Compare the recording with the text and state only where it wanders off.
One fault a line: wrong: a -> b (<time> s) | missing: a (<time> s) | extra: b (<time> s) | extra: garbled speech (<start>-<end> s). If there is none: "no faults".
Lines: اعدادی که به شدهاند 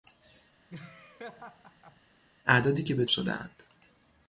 no faults